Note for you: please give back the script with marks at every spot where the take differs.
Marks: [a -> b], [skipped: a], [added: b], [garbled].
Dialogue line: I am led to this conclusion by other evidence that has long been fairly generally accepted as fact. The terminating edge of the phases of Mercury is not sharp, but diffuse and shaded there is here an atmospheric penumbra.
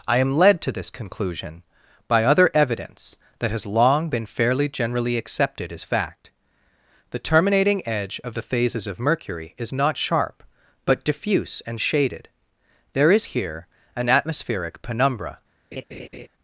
I am led to this conclusion by other evidence that has long been fairly generally accepted as fact. The terminating edge of the phases of Mercury is not sharp, but diffuse and shaded there is here an atmospheric penumbra.